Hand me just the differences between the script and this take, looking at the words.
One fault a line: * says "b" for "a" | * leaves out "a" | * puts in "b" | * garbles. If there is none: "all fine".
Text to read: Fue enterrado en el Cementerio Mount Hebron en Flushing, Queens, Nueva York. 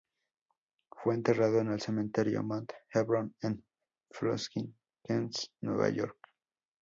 all fine